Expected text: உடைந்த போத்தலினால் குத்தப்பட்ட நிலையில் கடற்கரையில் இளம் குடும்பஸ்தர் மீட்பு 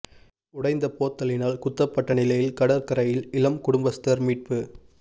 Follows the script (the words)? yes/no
yes